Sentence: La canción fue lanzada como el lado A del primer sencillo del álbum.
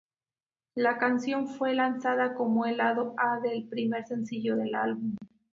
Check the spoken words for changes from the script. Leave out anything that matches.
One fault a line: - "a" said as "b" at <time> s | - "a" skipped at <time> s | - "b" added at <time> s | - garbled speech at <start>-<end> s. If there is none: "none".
none